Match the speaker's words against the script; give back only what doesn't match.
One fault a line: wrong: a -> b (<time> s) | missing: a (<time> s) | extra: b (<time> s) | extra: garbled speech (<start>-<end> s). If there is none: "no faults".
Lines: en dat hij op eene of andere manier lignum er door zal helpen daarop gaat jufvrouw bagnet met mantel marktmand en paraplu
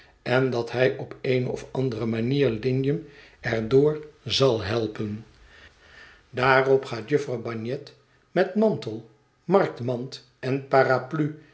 no faults